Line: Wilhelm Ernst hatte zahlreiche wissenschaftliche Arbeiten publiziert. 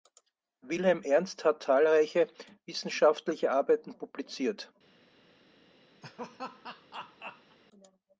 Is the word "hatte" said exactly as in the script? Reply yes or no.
no